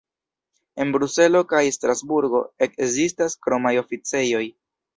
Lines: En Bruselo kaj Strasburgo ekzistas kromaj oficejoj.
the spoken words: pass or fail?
pass